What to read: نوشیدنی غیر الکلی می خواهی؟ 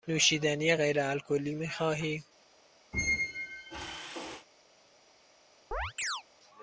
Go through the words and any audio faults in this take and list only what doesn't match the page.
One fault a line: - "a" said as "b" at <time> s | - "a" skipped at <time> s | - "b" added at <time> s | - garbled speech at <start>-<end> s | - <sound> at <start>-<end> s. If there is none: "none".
- squeak at 2.9-4.5 s
- chirp at 5.7-6.2 s